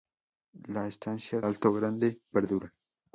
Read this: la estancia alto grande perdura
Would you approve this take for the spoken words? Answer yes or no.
yes